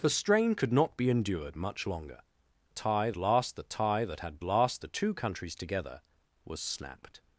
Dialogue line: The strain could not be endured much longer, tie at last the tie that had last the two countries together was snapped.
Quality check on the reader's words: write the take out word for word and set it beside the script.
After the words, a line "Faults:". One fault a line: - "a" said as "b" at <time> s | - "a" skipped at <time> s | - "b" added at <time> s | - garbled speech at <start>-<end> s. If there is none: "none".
The strain could not be endured much longer, tie at last the tie that had last the two countries together was snapped.
Faults:
none